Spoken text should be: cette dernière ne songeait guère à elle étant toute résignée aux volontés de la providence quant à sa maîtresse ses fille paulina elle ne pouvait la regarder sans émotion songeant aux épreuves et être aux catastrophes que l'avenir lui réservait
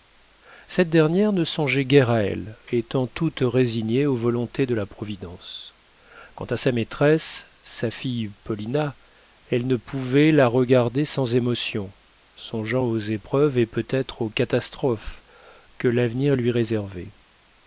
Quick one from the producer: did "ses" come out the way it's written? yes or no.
no